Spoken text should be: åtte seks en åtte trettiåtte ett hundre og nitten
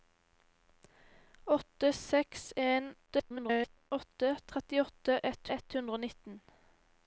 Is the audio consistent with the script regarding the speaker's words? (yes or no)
no